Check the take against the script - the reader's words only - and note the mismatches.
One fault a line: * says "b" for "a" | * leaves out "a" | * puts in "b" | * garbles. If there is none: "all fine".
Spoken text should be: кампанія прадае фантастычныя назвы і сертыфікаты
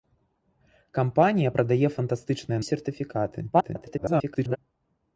* leaves out "назвы"
* garbles